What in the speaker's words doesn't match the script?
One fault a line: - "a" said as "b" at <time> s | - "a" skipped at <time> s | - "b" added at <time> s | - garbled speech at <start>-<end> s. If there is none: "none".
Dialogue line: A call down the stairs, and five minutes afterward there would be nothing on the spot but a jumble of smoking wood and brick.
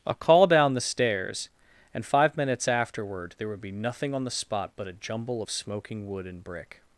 none